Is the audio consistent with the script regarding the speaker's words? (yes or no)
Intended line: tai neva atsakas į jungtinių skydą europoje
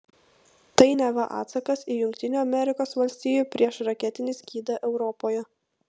no